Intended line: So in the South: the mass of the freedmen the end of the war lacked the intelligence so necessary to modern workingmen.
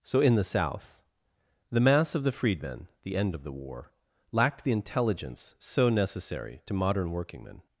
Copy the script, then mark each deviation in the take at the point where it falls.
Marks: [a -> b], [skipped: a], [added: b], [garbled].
So in the South: the mass of the freedmen the end of the war lacked the intelligence so necessary to modern workingmen.